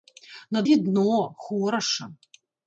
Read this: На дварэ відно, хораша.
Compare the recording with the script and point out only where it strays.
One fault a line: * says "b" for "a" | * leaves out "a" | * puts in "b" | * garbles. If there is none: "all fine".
* leaves out "дварэ"